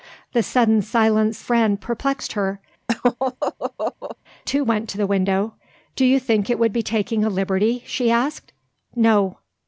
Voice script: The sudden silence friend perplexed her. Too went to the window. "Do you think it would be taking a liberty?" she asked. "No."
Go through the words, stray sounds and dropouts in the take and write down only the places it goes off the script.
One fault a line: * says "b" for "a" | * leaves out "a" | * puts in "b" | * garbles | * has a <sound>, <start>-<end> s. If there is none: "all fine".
* has a laugh, 2.9-4.2 s